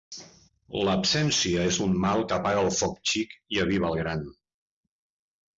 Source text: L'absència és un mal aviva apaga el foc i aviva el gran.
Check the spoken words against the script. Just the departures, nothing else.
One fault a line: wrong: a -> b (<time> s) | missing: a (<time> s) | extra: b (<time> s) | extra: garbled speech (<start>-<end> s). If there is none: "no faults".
wrong: aviva -> que (2.3 s)
extra: xic (3.1 s)